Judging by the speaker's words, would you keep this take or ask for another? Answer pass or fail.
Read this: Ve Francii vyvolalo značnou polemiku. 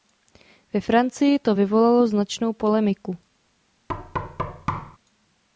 fail